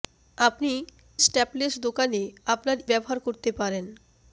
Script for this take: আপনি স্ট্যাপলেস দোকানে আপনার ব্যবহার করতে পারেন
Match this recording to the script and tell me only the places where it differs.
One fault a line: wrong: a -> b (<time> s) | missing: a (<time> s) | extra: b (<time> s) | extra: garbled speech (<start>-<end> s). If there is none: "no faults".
no faults